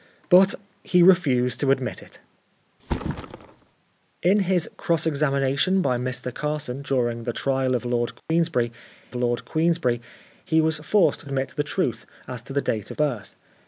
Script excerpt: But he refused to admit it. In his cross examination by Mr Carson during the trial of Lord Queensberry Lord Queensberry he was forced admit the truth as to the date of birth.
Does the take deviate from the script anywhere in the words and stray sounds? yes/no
yes